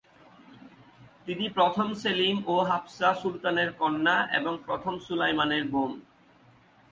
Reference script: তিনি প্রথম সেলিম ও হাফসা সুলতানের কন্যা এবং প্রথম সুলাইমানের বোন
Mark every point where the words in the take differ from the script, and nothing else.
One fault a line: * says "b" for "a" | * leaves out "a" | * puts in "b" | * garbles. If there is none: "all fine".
all fine